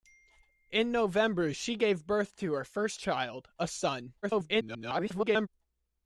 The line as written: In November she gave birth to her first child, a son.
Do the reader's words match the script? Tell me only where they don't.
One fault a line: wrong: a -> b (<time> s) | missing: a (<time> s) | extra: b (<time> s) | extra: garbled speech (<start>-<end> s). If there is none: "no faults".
extra: garbled speech (4.2-5.5 s)